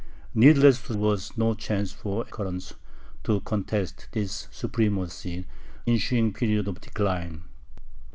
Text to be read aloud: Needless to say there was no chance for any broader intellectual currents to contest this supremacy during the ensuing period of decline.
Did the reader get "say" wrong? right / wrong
wrong